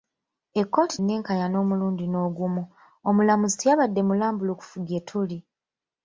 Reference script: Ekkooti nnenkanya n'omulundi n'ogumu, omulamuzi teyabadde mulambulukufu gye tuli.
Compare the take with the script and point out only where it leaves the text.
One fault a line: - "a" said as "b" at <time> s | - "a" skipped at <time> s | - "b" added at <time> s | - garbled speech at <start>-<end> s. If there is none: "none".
none